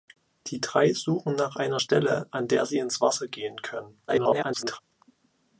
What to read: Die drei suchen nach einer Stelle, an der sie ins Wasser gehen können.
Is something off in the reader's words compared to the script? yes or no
yes